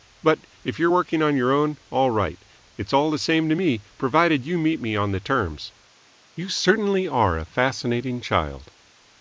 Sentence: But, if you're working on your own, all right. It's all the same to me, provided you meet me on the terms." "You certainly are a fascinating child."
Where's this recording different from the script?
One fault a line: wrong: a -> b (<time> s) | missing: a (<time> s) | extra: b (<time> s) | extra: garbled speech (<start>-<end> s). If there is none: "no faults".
no faults